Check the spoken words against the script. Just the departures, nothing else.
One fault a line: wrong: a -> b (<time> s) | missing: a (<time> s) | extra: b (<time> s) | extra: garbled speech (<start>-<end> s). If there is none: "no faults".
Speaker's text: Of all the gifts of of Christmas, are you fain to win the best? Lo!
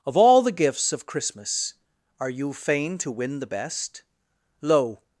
missing: of (1.1 s)